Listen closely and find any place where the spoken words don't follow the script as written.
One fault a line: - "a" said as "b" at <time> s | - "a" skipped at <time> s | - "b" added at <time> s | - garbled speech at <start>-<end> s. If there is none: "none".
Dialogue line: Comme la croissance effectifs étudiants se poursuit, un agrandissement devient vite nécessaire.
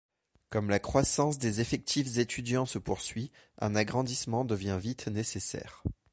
- "des" added at 1.4 s